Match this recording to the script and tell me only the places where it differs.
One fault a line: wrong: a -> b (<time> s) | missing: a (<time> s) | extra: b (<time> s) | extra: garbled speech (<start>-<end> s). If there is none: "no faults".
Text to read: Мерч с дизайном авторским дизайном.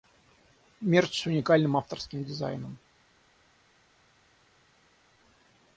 wrong: дизайном -> уникальным (1.3 s)